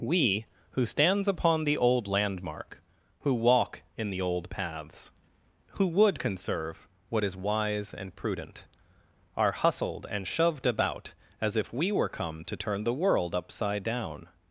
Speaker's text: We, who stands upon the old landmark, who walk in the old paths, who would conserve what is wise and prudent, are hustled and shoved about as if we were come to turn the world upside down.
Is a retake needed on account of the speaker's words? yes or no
no